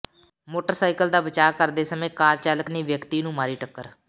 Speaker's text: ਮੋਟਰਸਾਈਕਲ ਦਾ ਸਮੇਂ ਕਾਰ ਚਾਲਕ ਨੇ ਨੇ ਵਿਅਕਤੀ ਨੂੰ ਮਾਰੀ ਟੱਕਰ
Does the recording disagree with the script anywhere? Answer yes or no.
yes